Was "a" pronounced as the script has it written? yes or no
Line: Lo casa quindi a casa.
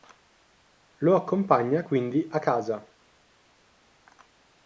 yes